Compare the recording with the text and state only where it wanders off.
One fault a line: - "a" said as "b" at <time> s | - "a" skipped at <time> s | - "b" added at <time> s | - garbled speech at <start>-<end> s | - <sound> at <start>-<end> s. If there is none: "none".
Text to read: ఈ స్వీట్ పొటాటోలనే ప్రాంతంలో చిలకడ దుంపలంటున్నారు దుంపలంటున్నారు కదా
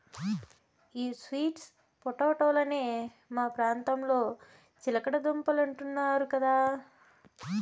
- "మా" added at 3.3 s
- "దుంపలంటున్నారు" skipped at 6.3 s